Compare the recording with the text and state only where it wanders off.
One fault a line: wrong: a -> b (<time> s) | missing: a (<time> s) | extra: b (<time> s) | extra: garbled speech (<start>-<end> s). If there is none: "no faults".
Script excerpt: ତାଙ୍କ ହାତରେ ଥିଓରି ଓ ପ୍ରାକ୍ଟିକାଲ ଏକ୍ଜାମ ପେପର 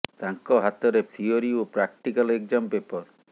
no faults